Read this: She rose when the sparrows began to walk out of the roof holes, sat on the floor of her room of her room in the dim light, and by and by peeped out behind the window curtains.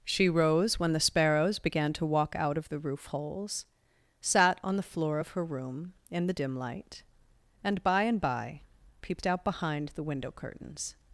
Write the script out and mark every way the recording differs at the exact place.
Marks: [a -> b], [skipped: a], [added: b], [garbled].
She rose when the sparrows began to walk out of the roof holes, sat on the floor of her room [skipped: of her room] in the dim light, and by and by peeped out behind the window curtains.